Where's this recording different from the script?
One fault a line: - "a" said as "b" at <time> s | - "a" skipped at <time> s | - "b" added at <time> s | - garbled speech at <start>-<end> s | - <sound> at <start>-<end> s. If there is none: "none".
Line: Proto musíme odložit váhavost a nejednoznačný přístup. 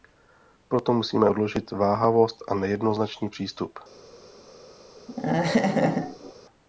- laugh at 5.1-6.3 s